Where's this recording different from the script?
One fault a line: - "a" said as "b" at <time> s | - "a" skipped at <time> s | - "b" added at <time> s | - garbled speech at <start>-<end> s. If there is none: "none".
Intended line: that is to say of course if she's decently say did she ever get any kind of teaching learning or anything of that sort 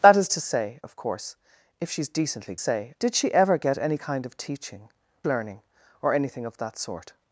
none